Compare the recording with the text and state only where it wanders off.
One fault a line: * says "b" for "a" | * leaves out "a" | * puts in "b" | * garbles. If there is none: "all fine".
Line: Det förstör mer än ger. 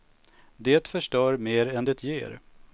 * puts in "det"